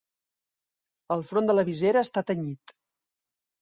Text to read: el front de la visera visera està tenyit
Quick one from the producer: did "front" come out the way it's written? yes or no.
yes